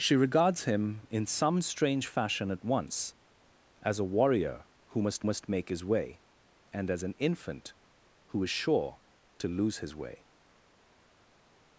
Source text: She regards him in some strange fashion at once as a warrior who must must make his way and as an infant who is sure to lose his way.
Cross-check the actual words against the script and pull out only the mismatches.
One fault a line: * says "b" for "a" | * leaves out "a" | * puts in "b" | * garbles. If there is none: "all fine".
all fine